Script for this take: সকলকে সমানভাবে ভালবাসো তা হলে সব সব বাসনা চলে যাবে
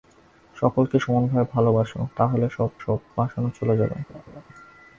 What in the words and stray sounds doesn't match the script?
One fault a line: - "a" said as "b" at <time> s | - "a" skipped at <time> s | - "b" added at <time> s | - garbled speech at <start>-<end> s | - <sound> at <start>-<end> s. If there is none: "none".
- laugh at 4.1-4.4 s